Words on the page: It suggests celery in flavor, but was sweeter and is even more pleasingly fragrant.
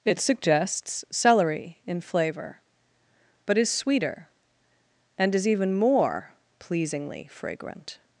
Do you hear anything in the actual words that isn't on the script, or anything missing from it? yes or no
yes